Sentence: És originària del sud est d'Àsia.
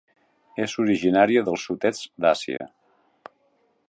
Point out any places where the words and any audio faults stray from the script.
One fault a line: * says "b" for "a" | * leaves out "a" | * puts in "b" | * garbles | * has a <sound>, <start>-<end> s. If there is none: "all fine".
* has a dropout, 2.6-2.6 s